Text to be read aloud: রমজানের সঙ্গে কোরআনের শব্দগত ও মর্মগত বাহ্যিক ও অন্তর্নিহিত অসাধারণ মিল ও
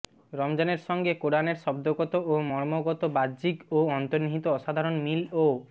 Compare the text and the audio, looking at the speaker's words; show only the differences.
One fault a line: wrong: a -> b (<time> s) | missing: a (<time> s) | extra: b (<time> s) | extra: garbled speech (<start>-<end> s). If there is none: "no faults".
no faults